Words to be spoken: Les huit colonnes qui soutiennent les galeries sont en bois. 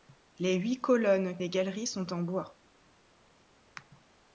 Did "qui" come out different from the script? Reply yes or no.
yes